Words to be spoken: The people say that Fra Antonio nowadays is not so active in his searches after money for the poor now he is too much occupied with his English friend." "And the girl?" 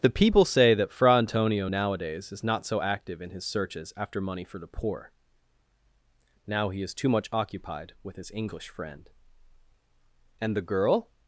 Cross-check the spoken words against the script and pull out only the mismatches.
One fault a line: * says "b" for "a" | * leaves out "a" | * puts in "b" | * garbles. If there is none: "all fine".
all fine